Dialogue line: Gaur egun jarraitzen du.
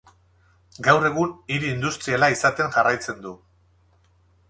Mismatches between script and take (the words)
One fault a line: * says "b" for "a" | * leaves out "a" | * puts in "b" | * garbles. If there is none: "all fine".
* puts in "hiri industriala izaten"